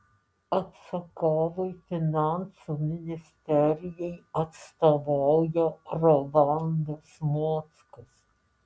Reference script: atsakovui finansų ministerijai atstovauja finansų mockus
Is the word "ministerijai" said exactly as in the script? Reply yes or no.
yes